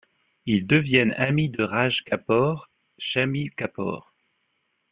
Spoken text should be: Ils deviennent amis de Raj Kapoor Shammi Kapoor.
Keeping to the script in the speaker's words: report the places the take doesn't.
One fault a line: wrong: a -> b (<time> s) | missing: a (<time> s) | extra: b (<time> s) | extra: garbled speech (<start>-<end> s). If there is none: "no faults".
no faults